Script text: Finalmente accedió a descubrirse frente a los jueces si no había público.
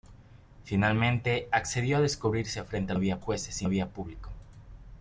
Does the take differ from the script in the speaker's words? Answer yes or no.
yes